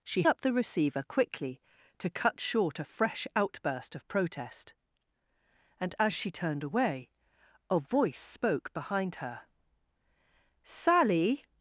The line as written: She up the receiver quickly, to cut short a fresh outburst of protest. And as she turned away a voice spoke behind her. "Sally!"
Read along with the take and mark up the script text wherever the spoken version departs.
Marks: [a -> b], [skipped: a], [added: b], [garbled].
She up the receiver quickly, to cut short a fresh outburst of protest. And as she turned away a voice spoke behind her. "Sally!"